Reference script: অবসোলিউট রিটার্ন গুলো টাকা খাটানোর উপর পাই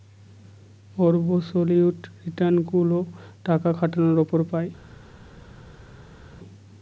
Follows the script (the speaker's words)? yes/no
yes